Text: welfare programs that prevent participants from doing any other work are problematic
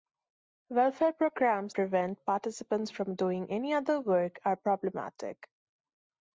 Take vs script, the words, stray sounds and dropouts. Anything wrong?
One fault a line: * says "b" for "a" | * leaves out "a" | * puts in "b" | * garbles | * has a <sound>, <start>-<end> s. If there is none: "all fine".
* leaves out "that"